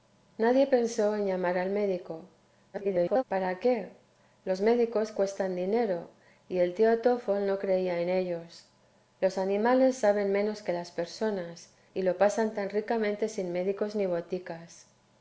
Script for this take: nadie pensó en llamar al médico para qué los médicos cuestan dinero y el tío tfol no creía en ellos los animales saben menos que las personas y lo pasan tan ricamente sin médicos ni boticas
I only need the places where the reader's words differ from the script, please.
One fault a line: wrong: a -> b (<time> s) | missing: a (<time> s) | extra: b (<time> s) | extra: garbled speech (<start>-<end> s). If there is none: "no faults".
extra: garbled speech (2.7-3.2 s)